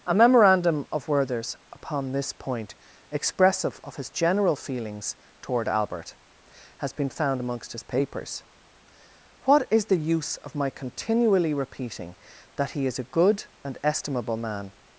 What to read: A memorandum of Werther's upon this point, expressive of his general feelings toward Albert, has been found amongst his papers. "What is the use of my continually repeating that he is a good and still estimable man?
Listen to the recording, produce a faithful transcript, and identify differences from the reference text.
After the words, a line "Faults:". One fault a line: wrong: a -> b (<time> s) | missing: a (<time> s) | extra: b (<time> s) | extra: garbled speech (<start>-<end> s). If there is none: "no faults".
A memorandum of Werther's upon this point, expressive of his general feelings toward Albert, has been found amongst his papers. "What is the use of my continually repeating that he is a good and estimable man?
Faults:
missing: still (13.8 s)